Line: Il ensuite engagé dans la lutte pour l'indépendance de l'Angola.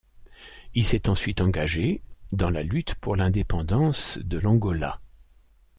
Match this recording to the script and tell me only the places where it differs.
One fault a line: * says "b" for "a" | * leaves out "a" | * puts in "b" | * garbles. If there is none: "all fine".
* puts in "s'est"